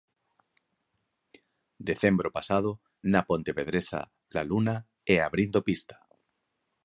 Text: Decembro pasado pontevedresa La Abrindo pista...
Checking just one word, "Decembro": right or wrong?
right